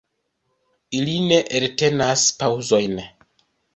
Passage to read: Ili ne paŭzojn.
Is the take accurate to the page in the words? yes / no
no